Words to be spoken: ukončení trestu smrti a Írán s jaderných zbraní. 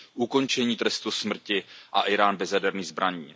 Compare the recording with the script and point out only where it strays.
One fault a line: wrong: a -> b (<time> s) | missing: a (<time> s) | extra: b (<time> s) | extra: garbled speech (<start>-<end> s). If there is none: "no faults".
wrong: s -> bez (2.4 s)